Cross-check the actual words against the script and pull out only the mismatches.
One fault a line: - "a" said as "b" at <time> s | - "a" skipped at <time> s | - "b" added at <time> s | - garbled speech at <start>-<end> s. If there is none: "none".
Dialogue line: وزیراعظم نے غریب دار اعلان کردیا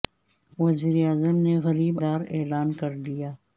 none